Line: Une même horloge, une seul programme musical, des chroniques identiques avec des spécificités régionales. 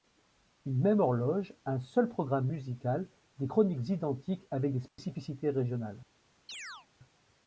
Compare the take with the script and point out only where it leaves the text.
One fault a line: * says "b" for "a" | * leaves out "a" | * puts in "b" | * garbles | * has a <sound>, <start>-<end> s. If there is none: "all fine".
* says "un" for "une"
* has a dropout, 4.9-5.0 s
* has a chirp, 6.5-6.9 s